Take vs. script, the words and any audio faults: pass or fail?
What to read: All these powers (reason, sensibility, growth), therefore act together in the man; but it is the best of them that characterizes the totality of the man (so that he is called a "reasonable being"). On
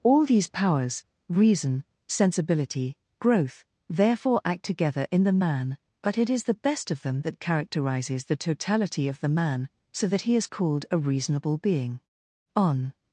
pass